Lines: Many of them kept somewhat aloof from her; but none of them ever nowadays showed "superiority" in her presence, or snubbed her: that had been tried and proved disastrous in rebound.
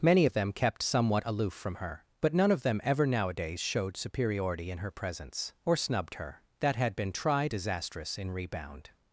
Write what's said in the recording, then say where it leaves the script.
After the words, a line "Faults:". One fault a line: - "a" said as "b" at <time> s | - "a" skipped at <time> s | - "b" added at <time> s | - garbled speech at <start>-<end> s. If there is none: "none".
Many of them kept somewhat aloof from her; but none of them ever nowadays showed "superiority" in her presence, or snubbed her: that had been tried disastrous in rebound.
Faults:
- "and proved" skipped at 7.5 s